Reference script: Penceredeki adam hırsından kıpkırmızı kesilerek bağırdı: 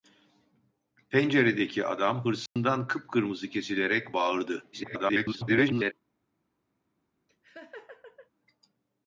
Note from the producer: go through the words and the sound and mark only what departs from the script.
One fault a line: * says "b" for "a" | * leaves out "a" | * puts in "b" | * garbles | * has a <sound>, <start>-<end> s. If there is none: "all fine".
* has a dropout, 2.5-2.6 s
* garbles
* has a laugh, 7.3-8.3 s